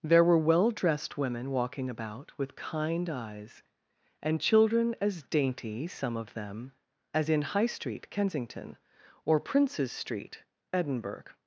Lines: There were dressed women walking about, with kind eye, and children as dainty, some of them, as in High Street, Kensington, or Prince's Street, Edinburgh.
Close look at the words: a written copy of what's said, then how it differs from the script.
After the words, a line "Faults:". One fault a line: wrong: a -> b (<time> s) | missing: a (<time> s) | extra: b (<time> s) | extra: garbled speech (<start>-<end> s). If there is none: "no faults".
There were well dressed women walking about, with kind eyes, and children as dainty, some of them, as in High Street, Kensington, or Prince's Street, Edinburgh.
Faults:
extra: well (0.4 s)
wrong: eye -> eyes (3.1 s)